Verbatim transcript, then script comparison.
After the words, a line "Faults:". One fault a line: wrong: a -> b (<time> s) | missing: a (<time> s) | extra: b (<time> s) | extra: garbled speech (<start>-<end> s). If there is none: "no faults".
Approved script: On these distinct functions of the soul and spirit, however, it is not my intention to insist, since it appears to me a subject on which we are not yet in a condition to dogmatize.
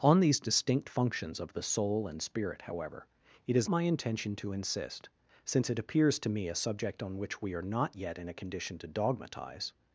On these distinct functions of the soul and spirit, however, it is my intention to insist, since it appears to me a subject on which we are not yet in a condition to dogmatize.
Faults:
missing: not (3.7 s)